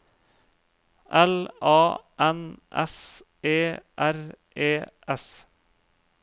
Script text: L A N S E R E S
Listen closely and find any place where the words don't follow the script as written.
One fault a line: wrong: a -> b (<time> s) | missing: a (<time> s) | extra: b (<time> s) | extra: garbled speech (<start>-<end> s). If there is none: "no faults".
no faults